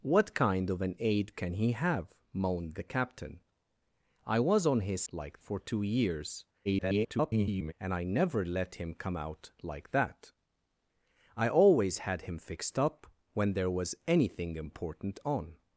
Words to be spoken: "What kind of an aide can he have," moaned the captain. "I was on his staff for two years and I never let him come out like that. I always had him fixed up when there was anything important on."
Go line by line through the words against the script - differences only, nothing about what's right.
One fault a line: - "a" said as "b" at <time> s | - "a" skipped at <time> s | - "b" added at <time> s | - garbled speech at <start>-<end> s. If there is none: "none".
- "staff" said as "like" at 5.1 s
- garbled speech at 6.6-7.7 s